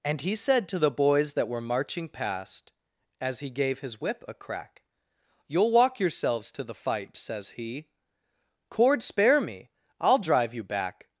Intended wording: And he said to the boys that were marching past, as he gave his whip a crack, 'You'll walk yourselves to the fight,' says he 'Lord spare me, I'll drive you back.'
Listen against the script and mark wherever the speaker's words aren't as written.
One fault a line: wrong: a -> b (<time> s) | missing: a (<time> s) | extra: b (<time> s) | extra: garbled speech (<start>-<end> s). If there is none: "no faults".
wrong: Lord -> Cord (8.7 s)